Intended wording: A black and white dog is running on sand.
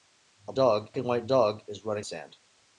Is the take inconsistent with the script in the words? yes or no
yes